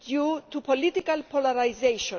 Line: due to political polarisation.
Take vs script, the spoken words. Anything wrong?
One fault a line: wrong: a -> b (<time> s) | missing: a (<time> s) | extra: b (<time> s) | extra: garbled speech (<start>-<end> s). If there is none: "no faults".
no faults